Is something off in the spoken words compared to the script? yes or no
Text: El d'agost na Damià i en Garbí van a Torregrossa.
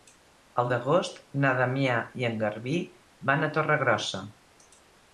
no